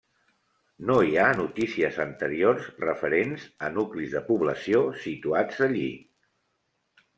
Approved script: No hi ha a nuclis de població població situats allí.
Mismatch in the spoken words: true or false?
true